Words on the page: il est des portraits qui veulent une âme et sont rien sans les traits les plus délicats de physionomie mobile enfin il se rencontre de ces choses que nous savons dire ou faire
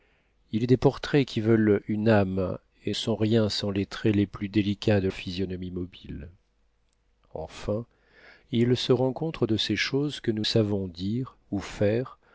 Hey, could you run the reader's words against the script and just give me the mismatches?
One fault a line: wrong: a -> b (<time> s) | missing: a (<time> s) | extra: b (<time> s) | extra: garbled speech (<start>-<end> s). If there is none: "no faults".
no faults